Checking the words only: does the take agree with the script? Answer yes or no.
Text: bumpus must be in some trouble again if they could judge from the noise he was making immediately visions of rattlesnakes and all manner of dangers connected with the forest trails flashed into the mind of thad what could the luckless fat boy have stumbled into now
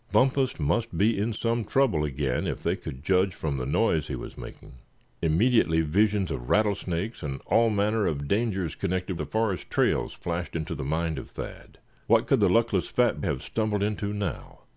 no